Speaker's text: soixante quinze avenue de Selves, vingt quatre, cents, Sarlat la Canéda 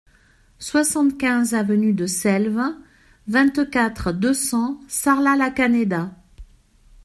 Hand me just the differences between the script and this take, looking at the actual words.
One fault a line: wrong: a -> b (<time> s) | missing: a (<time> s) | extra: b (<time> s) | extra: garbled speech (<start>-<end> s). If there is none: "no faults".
extra: deux (4.1 s)